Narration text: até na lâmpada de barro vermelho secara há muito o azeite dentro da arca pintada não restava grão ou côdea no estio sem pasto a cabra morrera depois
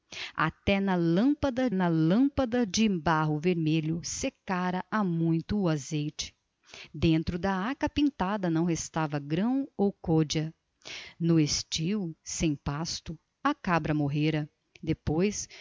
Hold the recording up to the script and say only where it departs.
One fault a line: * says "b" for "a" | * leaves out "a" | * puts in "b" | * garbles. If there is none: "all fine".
* puts in "na lâmpada"